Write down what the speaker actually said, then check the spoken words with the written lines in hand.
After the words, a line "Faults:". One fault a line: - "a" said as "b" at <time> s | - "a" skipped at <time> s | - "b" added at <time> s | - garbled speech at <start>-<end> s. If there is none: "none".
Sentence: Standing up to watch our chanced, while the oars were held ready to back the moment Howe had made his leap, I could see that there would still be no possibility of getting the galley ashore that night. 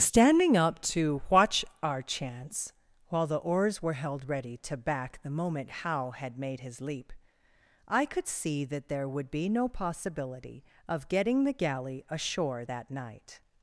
Standing up to watch our chance, while the oars were held ready to back the moment Howe had made his leap, I could see that there would be no possibility of getting the galley ashore that night.
Faults:
- "chanced" said as "chance" at 2.0 s
- "still" skipped at 9.3 s